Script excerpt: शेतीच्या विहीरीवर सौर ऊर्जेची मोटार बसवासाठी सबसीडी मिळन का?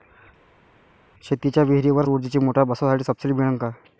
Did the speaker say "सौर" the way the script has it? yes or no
no